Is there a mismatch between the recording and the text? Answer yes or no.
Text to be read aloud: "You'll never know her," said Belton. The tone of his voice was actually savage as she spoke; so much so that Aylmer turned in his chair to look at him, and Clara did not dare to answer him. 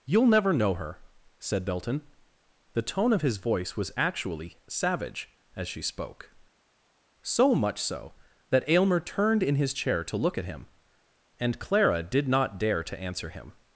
no